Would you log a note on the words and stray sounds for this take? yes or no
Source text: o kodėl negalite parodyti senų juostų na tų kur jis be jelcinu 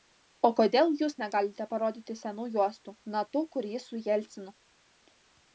yes